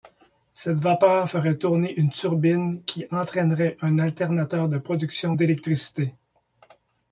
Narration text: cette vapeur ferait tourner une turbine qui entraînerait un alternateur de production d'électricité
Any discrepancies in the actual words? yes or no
no